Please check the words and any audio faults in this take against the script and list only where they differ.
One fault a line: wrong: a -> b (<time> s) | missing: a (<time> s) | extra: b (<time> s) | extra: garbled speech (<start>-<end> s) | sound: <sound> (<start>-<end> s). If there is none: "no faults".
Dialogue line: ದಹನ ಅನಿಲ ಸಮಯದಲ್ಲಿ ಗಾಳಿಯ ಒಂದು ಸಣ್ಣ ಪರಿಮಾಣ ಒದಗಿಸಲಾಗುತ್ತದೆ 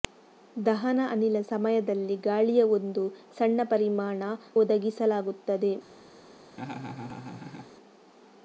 sound: laugh (6.5-7.7 s)